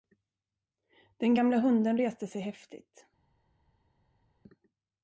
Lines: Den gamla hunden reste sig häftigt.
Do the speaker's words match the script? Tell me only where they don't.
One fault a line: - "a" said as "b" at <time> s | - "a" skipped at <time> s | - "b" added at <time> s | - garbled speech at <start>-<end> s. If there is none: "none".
none